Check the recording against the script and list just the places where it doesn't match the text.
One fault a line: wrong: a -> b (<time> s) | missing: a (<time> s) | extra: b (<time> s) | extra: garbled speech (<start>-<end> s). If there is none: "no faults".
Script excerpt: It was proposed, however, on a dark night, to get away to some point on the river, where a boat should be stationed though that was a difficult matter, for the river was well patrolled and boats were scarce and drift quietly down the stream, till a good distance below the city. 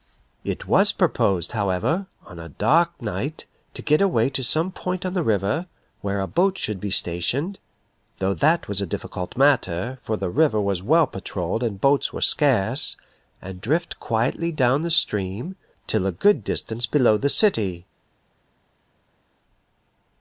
no faults